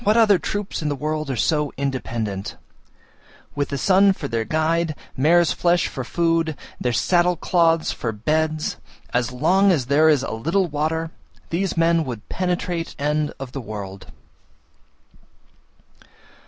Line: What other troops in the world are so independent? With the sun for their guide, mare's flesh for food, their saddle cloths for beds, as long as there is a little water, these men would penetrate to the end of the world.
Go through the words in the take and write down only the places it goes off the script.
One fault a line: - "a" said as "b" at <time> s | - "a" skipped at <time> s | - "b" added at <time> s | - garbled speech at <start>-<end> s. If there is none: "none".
- "to the" skipped at 12.9 s